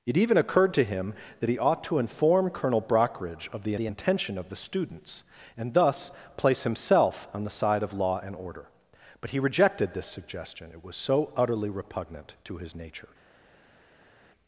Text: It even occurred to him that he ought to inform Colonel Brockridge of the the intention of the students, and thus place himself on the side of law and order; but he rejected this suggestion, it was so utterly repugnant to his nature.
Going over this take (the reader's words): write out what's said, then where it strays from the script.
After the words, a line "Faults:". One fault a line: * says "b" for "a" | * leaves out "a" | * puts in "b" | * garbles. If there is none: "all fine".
It even occurred to him that he ought to inform Colonel Brockridge of the the intention of the students, and thus place himself on the side of law and order; but he rejected this suggestion, it was so utterly repugnant to his nature.
Faults:
all fine